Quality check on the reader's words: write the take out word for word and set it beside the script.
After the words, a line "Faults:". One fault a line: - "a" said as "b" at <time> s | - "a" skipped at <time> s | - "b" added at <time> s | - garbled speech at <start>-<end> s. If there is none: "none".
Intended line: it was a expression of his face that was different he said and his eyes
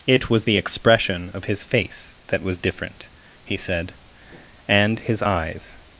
it was the expression of his face that was different he said and his eyes
Faults:
- "a" said as "the" at 0.4 s